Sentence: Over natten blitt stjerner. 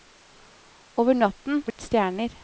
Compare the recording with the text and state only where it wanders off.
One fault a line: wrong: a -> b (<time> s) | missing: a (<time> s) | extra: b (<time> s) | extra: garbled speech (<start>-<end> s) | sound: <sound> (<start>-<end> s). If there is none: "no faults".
sound: dropout (1.7-1.8 s)